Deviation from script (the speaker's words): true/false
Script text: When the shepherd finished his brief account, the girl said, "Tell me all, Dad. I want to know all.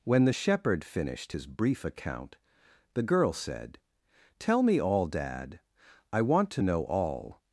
false